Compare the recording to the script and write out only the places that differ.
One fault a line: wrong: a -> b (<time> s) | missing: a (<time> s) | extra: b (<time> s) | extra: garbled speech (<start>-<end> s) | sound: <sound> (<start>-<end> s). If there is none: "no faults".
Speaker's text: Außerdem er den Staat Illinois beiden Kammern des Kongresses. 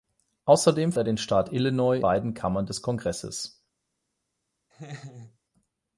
sound: laugh (4.7-5.4 s)